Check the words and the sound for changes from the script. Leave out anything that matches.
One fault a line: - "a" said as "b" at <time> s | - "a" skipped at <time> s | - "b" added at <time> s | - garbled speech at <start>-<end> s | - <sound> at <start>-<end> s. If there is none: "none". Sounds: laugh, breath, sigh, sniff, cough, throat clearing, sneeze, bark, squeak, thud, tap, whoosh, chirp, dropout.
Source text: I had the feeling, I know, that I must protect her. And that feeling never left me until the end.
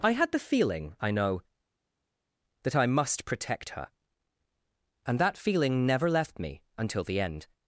none